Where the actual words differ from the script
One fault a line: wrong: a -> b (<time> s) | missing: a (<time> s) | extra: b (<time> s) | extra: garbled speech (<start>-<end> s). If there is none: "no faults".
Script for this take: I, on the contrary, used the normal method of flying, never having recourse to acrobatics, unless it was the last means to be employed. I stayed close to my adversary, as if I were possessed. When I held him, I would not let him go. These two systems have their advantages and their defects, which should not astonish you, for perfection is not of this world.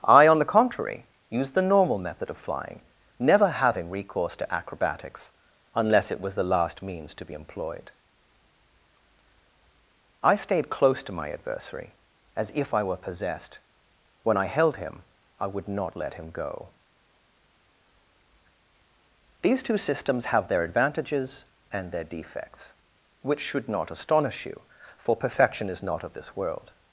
no faults